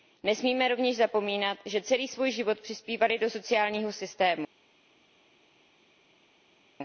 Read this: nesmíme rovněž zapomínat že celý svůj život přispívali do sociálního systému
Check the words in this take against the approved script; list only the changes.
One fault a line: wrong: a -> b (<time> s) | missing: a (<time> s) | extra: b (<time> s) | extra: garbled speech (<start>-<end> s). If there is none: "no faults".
no faults